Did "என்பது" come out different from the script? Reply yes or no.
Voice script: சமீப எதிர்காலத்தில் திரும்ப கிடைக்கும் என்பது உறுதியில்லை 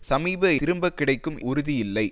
yes